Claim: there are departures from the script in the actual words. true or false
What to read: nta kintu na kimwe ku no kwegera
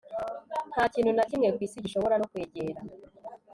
true